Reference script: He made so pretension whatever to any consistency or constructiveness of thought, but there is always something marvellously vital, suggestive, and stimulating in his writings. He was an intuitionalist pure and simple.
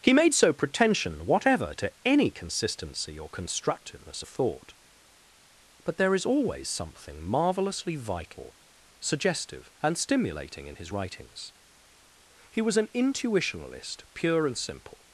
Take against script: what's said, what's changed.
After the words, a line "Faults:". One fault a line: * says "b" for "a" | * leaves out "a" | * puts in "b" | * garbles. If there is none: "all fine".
He made so pretension whatever to any consistency or constructiveness of thought, but there is always something marvellously vital, suggestive, and stimulating in his writings. He was an intuitionalist pure and simple.
Faults:
all fine